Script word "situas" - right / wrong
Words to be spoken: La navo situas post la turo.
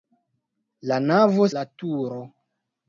wrong